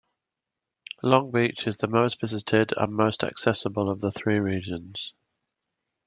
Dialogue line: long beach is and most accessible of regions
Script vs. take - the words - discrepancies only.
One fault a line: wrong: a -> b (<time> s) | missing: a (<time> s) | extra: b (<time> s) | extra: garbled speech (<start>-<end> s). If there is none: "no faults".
extra: the most visited (1.8 s)
extra: the three (4.0 s)